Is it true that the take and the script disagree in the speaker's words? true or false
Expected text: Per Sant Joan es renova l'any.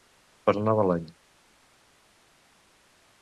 true